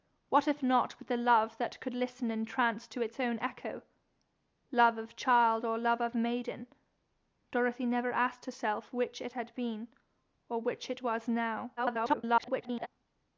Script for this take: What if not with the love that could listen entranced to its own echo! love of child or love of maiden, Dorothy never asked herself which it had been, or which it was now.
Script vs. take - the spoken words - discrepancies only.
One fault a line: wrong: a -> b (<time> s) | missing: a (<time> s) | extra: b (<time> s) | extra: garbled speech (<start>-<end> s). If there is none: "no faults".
extra: garbled speech (11.8-12.9 s)